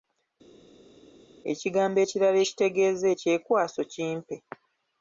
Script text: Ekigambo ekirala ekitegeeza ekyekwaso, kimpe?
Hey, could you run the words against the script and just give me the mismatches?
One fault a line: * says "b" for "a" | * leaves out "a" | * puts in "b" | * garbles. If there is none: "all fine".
all fine